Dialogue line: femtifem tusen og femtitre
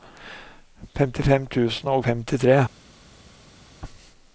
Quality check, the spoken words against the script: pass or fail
pass